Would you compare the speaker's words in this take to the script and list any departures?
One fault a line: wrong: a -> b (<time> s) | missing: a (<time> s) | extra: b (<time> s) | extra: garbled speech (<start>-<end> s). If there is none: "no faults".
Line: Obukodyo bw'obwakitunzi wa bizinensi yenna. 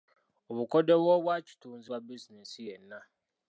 no faults